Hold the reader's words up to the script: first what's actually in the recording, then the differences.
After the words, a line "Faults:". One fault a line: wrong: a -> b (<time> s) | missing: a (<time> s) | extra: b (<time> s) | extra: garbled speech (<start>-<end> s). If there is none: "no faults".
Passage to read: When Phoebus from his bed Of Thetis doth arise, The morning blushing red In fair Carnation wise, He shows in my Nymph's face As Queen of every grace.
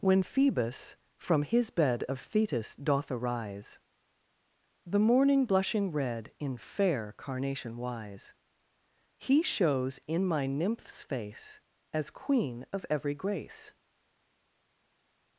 When Phoebus from his bed Of Thetis doth arise, The morning blushing red In fair Carnation wise, He shows in my Nymph's face As Queen of every grace.
Faults:
no faults